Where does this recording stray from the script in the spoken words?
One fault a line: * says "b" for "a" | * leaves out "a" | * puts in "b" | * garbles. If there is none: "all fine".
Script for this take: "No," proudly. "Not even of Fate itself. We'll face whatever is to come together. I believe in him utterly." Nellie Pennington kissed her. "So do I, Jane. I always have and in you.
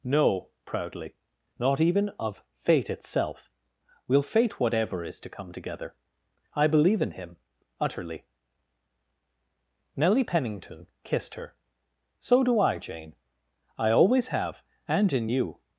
* says "fate" for "face"